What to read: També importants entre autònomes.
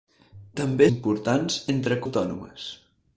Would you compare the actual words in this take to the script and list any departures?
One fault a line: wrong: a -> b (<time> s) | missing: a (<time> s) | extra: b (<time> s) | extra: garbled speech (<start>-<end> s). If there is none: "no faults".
no faults